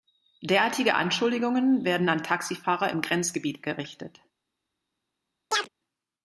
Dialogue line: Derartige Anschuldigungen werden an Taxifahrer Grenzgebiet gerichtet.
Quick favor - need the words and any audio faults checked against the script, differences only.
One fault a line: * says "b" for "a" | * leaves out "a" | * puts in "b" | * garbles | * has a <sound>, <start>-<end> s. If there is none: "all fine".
* puts in "im"
* has a chirp, 5.5-5.7 s